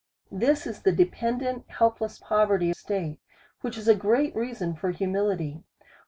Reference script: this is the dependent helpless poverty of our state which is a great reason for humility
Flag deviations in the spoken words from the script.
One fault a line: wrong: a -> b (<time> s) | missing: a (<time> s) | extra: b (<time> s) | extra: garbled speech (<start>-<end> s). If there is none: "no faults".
missing: of our (2.7 s)